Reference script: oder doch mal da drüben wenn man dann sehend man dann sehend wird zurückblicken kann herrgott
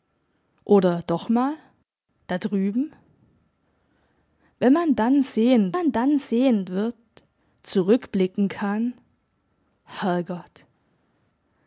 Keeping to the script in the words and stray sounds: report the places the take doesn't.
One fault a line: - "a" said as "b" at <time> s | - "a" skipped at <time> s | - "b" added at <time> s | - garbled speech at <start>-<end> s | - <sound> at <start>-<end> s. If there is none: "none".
none